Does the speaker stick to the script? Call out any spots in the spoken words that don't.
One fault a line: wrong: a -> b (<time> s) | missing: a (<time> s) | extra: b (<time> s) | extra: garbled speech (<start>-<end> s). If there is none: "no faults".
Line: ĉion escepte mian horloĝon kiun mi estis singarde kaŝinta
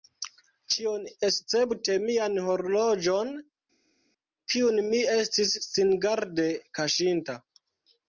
no faults